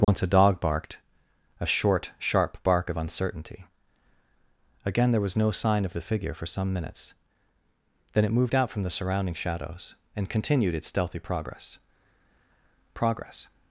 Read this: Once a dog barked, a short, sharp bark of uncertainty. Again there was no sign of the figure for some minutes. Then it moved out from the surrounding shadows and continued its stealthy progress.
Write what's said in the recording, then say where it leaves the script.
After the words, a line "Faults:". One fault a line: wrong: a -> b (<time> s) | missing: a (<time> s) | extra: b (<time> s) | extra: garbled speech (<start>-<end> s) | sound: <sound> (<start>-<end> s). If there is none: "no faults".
Once a dog barked, a short, sharp bark of uncertainty. Again there was no sign of the figure for some minutes. Then it moved out from the surrounding shadows and continued its stealthy progress progress.
Faults:
sound: dropout (0.0-0.1 s)
extra: progress (12.9 s)